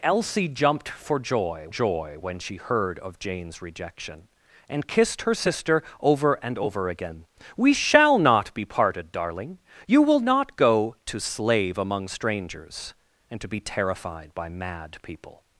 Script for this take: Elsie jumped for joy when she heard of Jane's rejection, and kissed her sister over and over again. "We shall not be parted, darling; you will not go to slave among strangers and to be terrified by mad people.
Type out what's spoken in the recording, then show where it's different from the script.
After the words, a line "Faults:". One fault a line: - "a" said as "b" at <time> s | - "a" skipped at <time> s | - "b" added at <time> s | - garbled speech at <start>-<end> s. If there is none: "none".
Elsie jumped for joy joy when she heard of Jane's rejection, and kissed her sister over and over again. "We shall not be parted, darling; you will not go to slave among strangers and to be terrified by mad people.
Faults:
- "joy" added at 1.7 s